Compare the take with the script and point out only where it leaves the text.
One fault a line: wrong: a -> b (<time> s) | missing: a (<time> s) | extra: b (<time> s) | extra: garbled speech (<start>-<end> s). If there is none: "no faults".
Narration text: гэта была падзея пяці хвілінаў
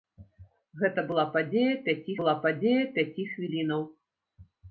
extra: была падзея пяці (2.2 s)